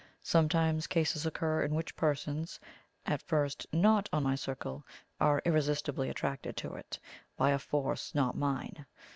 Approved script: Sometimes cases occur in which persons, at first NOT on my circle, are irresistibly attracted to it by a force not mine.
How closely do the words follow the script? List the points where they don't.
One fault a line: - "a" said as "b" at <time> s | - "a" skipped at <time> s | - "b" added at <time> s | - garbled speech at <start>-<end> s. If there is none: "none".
none